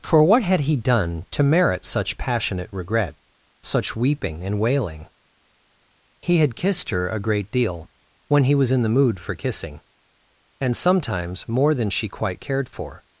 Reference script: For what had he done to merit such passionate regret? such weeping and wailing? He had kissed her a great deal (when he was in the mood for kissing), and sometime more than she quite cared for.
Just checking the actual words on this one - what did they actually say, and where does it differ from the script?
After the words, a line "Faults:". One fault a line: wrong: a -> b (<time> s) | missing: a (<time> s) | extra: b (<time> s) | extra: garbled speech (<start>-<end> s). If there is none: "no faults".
For what had he done to merit such passionate regret? such weeping and wailing? He had kissed her a great deal (when he was in the mood for kissing), and sometimes more than she quite cared for.
Faults:
wrong: sometime -> sometimes (10.8 s)